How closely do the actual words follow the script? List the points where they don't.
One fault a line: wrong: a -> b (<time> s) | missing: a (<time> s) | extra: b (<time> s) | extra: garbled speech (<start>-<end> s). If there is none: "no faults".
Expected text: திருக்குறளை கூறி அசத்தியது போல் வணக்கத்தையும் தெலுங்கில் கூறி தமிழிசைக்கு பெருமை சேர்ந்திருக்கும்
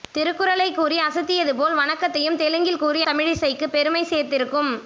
no faults